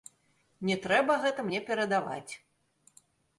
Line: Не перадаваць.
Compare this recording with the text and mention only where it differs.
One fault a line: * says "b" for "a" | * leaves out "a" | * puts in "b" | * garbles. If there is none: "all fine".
* puts in "трэба гэта мне"